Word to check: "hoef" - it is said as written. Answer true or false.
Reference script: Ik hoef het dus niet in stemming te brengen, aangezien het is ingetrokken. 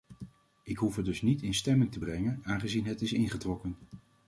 true